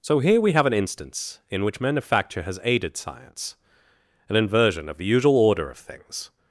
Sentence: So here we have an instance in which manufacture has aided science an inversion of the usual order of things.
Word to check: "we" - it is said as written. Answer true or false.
true